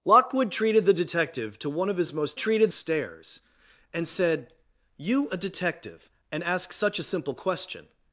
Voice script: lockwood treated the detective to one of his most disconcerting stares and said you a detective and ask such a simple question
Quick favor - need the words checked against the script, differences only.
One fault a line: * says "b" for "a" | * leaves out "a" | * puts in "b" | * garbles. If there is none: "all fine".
* says "treated" for "disconcerting"